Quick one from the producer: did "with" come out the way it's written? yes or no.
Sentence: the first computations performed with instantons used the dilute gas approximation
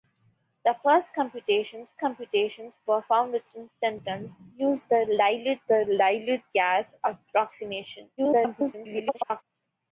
yes